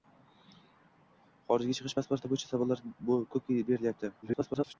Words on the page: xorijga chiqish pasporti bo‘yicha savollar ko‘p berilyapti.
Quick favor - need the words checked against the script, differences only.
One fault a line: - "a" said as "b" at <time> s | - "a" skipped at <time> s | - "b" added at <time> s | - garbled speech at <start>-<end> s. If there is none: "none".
- garbled speech at 4.2-4.7 s